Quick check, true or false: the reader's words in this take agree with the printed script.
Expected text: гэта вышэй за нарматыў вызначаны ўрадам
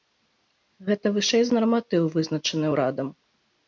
true